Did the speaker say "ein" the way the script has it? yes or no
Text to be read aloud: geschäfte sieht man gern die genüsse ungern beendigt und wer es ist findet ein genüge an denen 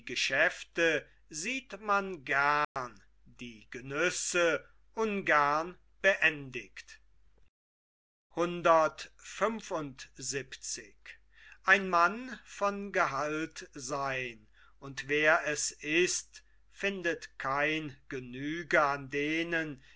no